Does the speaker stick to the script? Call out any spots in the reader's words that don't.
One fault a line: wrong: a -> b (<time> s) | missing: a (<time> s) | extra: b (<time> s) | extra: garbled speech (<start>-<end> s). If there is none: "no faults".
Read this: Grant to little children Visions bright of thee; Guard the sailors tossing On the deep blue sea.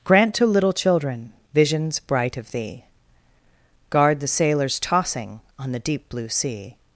no faults